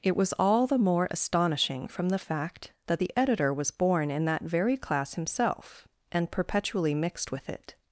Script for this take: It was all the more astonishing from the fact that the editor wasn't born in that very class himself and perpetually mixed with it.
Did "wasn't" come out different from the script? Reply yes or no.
yes